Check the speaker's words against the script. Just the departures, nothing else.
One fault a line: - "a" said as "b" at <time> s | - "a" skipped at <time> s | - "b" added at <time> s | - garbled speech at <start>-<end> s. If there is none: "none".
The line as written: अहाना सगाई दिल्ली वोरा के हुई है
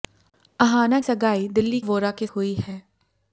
none